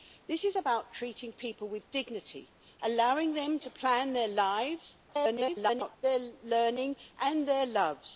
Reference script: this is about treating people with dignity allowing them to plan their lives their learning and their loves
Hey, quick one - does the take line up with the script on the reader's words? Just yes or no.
no